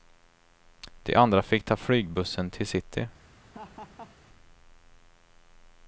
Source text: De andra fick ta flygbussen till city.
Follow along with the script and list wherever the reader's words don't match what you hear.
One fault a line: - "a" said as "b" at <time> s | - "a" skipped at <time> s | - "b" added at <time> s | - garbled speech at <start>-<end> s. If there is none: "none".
none